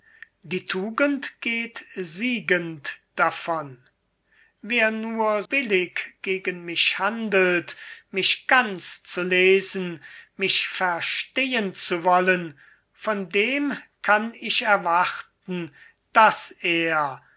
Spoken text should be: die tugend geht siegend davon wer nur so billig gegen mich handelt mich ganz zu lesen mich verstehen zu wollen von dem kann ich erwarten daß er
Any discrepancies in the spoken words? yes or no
yes